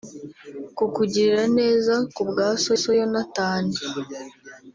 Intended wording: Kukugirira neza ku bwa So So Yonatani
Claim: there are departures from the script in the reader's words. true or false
false